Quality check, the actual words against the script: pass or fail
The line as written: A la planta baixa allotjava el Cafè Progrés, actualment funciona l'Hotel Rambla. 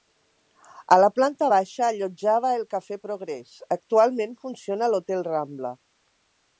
pass